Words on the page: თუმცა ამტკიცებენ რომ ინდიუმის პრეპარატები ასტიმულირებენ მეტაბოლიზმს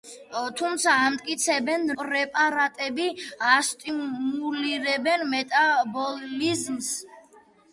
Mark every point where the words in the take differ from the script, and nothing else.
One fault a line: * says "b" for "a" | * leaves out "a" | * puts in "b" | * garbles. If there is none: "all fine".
* leaves out "რომ ინდიუმის"